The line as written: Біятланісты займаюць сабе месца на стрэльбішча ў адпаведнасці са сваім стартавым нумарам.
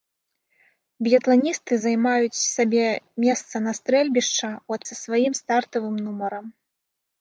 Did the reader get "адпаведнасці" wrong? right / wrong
wrong